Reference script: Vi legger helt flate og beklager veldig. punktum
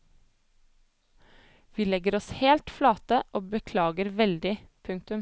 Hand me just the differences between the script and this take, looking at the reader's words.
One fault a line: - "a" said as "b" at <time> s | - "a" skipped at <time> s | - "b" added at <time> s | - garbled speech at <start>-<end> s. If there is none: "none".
- "oss" added at 2.1 s